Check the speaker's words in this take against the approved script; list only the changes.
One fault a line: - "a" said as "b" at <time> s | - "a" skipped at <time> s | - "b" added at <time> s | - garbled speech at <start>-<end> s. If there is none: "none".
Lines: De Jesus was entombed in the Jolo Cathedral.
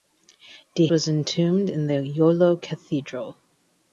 - "Jesus" skipped at 0.9 s